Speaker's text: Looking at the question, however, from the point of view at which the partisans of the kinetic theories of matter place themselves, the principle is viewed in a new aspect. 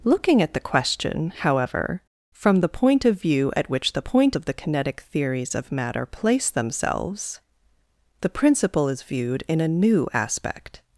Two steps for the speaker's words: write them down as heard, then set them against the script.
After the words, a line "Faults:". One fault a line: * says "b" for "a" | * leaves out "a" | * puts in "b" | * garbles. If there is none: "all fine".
Looking at the question, however, from the point of view at which the point of the kinetic theories of matter place themselves, the principle is viewed in a new aspect.
Faults:
* says "point" for "partisans"